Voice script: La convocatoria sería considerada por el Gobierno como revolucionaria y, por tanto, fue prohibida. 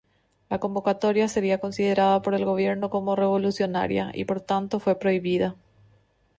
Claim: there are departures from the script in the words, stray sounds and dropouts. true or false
false